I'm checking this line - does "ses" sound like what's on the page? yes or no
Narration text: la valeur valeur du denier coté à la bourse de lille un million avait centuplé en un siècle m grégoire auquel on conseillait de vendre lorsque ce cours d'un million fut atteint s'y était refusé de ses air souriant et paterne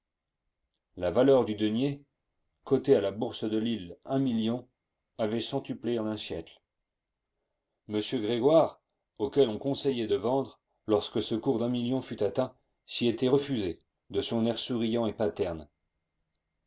no